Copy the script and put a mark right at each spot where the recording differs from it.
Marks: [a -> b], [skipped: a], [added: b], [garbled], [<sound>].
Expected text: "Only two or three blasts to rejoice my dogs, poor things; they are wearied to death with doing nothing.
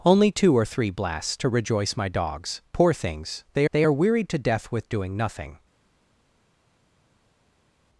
"Only two or three blasts to rejoice my dogs, poor things; they [added: they] are wearied to death with doing nothing.